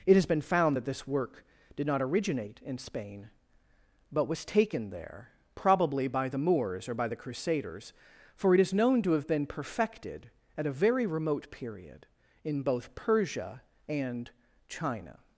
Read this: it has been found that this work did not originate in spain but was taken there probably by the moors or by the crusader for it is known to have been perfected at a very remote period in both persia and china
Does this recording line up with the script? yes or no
no